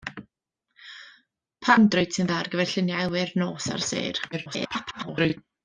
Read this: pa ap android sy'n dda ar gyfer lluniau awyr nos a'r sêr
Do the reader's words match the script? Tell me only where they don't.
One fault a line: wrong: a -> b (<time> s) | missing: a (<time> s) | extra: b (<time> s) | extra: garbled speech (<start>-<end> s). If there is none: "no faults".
missing: ap (1.8 s)
extra: garbled speech (4.3-5.4 s)